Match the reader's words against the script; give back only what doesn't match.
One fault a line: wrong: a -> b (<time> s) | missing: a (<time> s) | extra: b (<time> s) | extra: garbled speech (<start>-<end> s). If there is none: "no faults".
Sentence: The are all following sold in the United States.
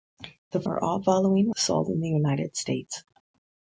no faults